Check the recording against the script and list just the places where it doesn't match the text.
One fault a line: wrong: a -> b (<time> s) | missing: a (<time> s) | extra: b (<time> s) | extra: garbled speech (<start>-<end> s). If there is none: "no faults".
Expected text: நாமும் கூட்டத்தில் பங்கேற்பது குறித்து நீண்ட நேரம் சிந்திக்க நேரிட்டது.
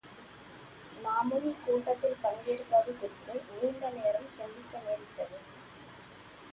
no faults